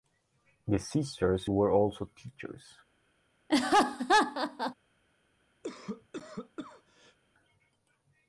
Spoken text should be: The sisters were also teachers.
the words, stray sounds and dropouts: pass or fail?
fail